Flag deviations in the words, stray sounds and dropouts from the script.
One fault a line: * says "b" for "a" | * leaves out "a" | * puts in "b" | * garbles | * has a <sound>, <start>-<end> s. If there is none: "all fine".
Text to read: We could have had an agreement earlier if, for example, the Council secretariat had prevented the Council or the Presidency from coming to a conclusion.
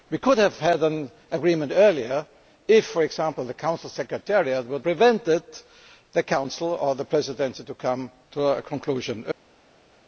all fine